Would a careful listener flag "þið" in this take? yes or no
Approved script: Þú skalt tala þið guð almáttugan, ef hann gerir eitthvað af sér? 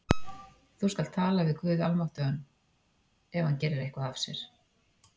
yes